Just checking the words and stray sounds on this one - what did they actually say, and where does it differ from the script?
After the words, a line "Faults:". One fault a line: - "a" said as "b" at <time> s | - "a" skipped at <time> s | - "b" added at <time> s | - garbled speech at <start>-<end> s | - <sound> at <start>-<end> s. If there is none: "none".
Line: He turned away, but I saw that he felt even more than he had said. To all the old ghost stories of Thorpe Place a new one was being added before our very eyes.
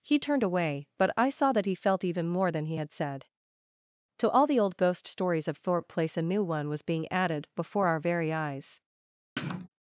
He turned away, but I saw that he felt even more than he had said. To all the old ghost stories of Thorpe Place a new one was being added before our very eyes.
Faults:
- sniff at 9.4-9.7 s